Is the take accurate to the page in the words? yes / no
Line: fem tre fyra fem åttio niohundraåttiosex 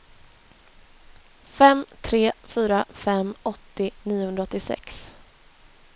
yes